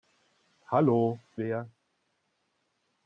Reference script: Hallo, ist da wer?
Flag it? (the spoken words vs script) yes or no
yes